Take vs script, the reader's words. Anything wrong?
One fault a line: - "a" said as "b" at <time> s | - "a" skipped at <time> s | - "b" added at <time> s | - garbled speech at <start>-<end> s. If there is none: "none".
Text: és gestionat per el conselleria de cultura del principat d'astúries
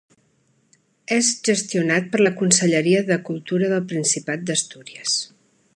- "el" said as "la" at 2.2 s